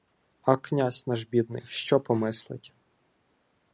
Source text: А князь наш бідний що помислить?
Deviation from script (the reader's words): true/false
false